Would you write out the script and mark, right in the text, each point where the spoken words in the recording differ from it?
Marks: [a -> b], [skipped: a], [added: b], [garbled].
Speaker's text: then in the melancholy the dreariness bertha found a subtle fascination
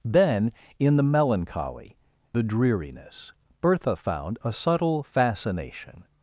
then in the melancholy the dreariness bertha found a subtle fascination